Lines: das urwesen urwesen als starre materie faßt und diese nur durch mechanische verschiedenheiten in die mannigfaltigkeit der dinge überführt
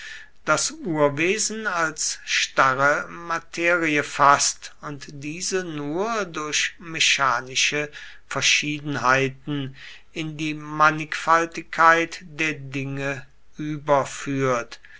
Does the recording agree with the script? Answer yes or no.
no